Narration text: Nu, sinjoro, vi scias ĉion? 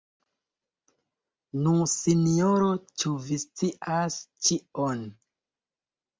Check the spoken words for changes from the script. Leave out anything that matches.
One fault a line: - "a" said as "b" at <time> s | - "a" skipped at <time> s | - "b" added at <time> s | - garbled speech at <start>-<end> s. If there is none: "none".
- "ĉu" added at 3.0 s